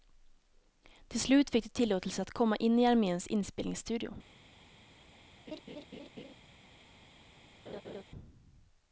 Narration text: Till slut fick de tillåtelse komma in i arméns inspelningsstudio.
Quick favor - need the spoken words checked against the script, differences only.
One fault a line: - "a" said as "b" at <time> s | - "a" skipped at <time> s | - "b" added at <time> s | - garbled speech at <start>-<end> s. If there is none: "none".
- "att" added at 2.2 s